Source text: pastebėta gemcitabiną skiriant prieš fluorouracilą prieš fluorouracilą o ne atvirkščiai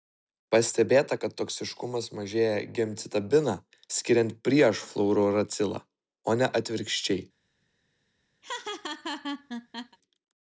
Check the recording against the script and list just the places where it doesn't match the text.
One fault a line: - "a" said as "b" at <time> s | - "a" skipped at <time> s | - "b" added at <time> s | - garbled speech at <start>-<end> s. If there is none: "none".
- "kad toksiškumas mažėja" added at 1.2 s
- "prieš fluorouracilą" skipped at 5.8 s